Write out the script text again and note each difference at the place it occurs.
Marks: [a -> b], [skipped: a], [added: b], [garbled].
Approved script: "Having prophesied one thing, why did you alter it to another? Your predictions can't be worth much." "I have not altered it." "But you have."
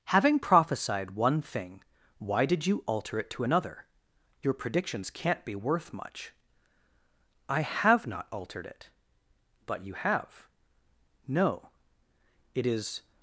"Having prophesied one thing, why did you alter it to another? Your predictions can't be worth much." "I have not altered it." "But you have." [added: No It is]